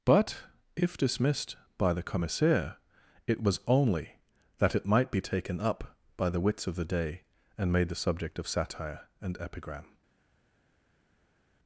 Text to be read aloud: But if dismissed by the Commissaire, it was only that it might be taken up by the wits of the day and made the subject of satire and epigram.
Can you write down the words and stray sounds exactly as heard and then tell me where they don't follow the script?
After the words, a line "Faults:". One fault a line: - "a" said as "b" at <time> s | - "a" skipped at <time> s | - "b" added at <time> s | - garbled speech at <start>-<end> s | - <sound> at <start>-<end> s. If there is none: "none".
But if dismissed by the Commissaire, it was only that it might be taken up by the wits of the day and made the subject of satire and epigram.
Faults:
none